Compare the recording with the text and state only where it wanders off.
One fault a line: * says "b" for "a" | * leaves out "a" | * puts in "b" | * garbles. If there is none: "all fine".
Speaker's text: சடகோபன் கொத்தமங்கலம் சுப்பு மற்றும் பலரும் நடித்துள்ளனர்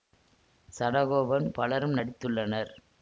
* leaves out "கொத்தமங்கலம் சுப்பு மற்றும்"